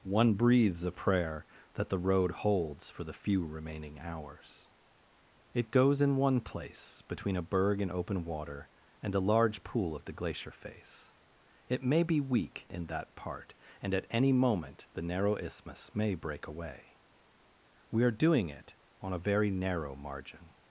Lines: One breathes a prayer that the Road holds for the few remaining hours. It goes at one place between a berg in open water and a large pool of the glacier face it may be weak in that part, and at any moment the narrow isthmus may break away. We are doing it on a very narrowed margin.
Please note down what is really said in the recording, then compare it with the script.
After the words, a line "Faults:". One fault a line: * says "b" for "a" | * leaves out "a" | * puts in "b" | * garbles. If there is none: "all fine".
One breathes a prayer that the Road holds for the few remaining hours. It goes in one place between a berg in open water and a large pool of the glacier face it may be weak in that part, and at any moment the narrow isthmus may break away. We are doing it on a very narrow margin.
Faults:
* says "in" for "at"
* says "narrow" for "narrowed"